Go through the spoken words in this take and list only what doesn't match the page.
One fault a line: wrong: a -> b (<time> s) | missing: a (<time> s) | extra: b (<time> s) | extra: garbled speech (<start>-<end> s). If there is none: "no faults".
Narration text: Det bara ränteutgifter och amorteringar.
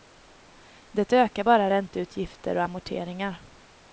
extra: ökar (1.1 s)